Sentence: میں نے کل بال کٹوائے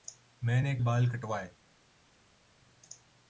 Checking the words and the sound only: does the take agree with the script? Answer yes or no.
no